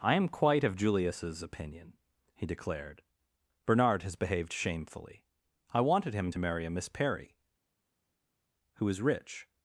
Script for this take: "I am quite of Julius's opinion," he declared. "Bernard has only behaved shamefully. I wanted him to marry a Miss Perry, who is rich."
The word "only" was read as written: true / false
false